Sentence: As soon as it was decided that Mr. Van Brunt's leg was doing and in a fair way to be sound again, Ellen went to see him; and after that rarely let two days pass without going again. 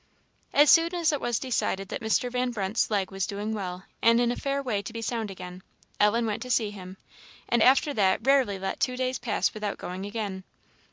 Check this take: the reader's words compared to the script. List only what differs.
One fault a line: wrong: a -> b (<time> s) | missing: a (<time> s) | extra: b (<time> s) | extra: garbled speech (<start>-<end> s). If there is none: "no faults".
extra: well (3.5 s)